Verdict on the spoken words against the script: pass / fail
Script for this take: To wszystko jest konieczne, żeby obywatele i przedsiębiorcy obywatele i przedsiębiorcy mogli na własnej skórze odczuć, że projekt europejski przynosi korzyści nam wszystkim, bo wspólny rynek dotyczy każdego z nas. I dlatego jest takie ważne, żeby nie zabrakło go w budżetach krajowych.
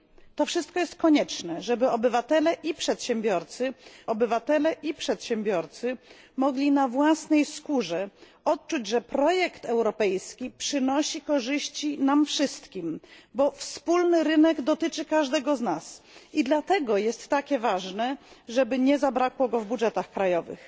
pass